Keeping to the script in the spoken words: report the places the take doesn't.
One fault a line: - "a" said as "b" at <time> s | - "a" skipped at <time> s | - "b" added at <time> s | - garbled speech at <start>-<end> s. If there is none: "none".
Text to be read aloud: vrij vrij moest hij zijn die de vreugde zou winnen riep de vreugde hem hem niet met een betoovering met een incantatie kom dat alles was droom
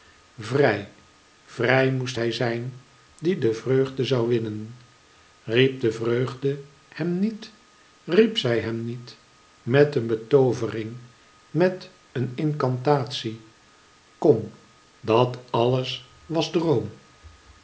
- "niet riep zij" added at 7.2 s